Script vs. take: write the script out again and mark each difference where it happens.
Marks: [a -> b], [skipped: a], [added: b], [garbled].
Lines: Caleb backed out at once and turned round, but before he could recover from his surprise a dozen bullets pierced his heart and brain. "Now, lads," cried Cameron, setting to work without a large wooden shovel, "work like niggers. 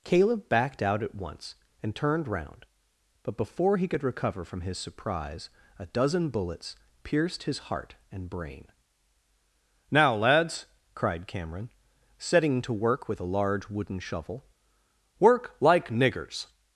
Caleb backed out at once and turned round, but before he could recover from his surprise a dozen bullets pierced his heart and brain. "Now, lads," cried Cameron, setting to work [without -> with] a large wooden shovel, "work like niggers.